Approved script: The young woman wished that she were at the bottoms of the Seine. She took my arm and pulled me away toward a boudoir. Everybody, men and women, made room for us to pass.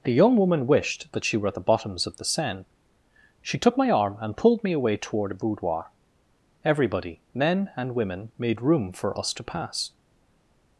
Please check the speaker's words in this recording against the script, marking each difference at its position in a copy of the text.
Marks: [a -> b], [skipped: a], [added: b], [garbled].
The young woman wished that she were at the bottoms of the Seine. She took my arm and pulled me away toward a boudoir. Everybody, men and women, made room for us to pass.